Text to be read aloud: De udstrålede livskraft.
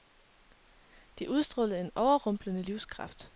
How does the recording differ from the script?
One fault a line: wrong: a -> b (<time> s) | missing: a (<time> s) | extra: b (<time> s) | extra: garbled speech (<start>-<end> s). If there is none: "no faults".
extra: en overrumplende (1.8 s)